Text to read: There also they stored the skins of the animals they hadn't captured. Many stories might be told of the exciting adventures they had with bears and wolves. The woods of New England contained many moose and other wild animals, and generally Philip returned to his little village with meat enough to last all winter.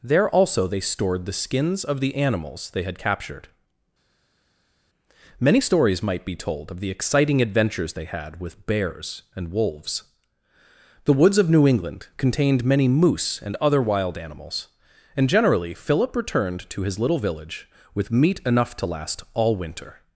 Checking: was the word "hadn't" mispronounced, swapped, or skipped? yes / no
yes